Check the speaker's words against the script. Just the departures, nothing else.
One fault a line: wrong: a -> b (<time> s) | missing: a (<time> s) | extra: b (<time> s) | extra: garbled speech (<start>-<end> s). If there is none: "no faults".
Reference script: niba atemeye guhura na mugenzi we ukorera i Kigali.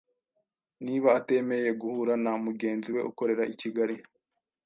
no faults